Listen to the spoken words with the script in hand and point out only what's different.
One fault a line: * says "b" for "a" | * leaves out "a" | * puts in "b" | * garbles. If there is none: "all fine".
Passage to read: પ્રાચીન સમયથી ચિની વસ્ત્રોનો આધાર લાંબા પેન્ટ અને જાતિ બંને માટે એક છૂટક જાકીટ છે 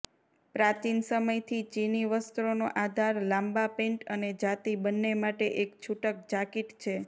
all fine